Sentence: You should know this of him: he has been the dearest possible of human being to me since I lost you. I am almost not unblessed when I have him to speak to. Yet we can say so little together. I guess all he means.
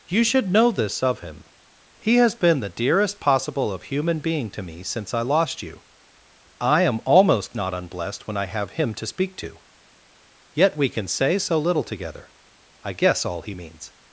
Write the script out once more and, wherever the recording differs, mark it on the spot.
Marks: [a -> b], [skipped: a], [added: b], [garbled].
You should know this of him: he has been the dearest possible of human being to me since I lost you. I am almost not unblessed when I have him to speak to. Yet we can say so little together. I guess all he means.